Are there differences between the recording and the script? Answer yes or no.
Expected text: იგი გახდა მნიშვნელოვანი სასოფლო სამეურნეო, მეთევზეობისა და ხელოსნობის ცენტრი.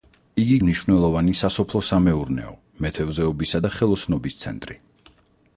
yes